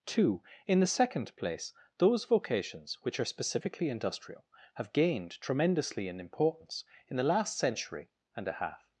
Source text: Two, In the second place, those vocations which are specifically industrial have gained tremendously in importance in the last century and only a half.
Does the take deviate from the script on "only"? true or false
true